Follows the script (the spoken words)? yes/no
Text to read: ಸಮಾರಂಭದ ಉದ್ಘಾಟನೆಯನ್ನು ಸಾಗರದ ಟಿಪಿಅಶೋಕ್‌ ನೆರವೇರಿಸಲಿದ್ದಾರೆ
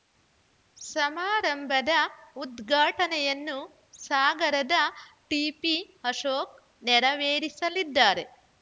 yes